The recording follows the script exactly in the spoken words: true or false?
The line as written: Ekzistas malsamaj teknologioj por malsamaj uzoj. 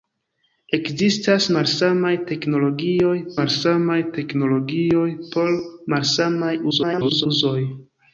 false